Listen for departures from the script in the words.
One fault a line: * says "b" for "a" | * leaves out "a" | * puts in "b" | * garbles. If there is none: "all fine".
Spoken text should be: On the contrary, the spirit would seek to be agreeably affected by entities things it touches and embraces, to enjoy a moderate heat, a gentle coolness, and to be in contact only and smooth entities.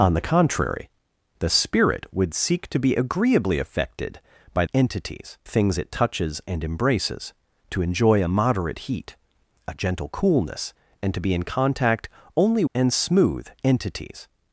all fine